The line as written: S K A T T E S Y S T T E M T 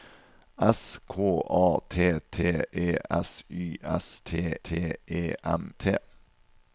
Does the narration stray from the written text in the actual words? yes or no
no